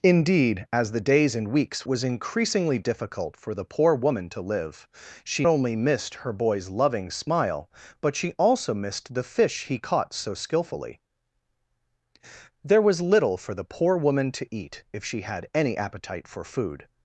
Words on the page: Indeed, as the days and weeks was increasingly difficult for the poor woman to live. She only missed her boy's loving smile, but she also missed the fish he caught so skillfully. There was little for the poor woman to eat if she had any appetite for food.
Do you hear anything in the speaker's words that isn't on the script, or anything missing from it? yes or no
no